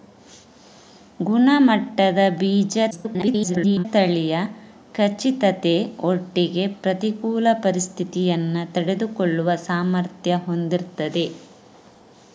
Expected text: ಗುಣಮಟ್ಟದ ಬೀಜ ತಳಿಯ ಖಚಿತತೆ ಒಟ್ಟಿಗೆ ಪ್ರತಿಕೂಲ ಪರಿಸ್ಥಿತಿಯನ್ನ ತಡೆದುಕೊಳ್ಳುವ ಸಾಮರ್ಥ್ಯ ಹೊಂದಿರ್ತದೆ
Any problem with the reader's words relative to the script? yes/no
yes